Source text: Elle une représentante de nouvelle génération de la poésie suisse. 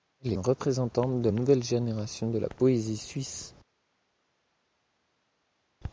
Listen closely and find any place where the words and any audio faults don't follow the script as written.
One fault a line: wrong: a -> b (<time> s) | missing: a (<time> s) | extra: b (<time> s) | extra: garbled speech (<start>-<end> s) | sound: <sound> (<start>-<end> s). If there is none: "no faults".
no faults